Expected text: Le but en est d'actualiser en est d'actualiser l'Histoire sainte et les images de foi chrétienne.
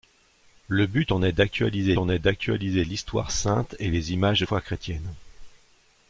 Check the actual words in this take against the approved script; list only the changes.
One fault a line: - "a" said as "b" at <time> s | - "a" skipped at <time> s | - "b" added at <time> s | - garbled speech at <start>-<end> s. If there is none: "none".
none